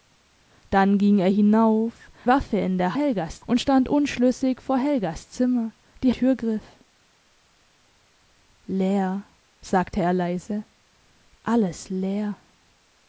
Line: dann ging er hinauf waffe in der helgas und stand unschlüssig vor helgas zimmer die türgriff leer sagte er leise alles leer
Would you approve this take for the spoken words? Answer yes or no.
yes